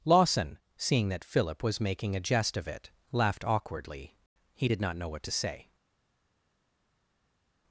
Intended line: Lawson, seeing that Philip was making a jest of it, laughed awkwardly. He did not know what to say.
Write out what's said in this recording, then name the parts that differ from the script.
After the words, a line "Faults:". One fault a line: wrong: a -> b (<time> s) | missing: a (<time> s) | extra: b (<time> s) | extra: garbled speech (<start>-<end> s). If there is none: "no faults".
Lawson, seeing that Philip was making a jest of it, laughed awkwardly. He did not know what to say.
Faults:
no faults